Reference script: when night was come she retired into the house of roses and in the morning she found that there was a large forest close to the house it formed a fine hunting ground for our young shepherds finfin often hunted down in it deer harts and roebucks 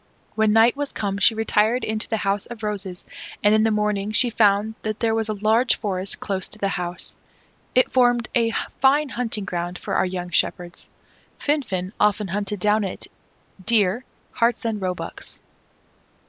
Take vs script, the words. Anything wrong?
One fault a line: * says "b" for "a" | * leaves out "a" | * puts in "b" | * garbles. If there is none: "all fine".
all fine